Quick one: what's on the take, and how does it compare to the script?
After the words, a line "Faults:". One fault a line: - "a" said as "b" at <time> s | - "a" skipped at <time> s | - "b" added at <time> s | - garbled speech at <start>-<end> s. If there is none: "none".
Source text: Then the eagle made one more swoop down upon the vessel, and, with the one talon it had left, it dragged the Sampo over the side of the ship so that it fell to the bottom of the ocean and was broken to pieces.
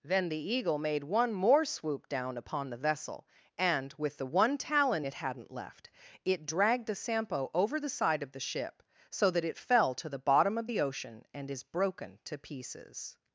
Then the eagle made one more swoop down upon the vessel, and, with the one talon it hadn't left, it dragged the Sampo over the side of the ship so that it fell to the bottom of the ocean and is broken to pieces.
Faults:
- "had" said as "hadn't" at 5.1 s
- "was" said as "is" at 11.5 s